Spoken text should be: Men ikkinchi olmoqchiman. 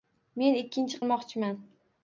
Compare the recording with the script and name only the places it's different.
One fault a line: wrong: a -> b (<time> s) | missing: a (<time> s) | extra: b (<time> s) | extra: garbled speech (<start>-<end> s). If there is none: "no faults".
no faults